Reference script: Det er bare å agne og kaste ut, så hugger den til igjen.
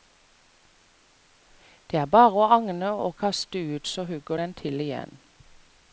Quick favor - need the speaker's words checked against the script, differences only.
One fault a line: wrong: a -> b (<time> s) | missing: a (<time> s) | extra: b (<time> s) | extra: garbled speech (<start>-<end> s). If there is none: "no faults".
no faults